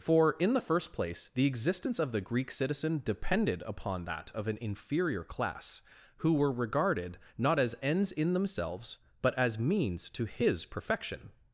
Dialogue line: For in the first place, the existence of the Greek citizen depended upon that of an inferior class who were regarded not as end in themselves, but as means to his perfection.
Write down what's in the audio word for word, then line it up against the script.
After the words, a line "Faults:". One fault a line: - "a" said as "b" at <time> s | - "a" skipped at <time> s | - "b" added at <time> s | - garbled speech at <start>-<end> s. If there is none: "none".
For in the first place, the existence of the Greek citizen depended upon that of an inferior class who were regarded not as ends in themselves, but as means to his perfection.
Faults:
- "end" said as "ends" at 7.8 s